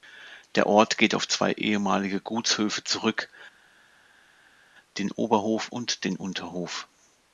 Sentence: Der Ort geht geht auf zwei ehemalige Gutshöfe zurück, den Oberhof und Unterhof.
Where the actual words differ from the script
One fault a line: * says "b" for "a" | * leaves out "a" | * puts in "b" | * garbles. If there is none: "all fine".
* leaves out "geht"
* puts in "den"